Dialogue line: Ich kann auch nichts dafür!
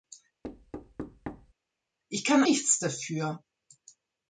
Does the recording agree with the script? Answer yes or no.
no